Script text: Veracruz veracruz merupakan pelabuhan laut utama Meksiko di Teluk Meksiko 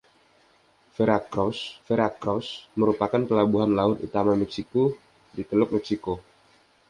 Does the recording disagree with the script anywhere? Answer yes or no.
no